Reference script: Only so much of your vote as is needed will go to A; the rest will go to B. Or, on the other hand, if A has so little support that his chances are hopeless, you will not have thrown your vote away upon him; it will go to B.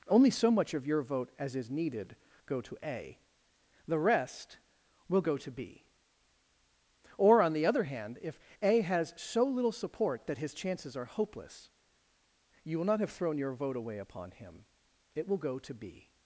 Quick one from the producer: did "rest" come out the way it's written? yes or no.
yes